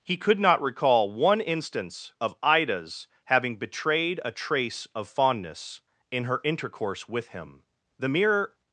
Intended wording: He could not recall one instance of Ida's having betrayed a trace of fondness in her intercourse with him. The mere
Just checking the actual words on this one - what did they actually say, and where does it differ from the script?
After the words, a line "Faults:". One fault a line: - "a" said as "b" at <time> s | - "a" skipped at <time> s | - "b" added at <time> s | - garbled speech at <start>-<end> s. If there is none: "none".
He could not recall one instance of Ida's having betrayed a trace of fondness in her intercourse with him. The mere
Faults:
none